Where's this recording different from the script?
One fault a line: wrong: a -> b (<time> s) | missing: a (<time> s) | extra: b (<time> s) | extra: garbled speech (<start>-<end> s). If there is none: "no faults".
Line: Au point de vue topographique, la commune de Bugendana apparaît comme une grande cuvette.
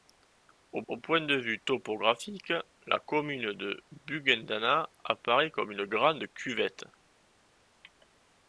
extra: au (0.9 s)